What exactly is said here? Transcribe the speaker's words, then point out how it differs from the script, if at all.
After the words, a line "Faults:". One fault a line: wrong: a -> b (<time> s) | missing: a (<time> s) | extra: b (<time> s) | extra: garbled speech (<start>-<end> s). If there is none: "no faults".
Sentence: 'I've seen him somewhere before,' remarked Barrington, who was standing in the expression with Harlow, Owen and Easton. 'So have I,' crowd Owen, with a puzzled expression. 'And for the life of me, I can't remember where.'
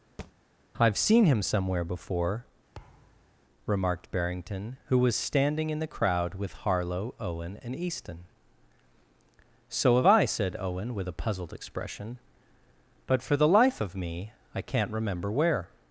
'I've seen him somewhere before,' remarked Barrington, who was standing in the crowd with Harlow, Owen and Easton. 'So have I,' said Owen, with a puzzled expression. 'But for the life of me, I can't remember where.'
Faults:
wrong: expression -> crowd (5.9 s)
wrong: crowd -> said (10.3 s)
wrong: And -> But (13.1 s)